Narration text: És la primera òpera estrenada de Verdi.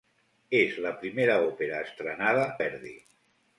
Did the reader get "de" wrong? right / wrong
wrong